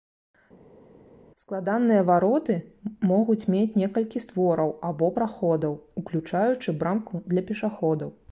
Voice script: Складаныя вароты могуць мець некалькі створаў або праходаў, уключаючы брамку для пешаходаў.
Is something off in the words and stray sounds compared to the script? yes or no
no